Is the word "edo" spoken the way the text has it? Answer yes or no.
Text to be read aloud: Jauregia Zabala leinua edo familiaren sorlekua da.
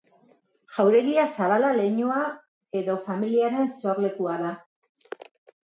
yes